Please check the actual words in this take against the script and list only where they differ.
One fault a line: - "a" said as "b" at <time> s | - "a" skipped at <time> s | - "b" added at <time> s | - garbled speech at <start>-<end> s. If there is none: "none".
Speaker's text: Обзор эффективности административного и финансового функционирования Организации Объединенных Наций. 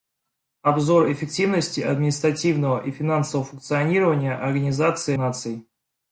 - "Объединенных" skipped at 5.2 s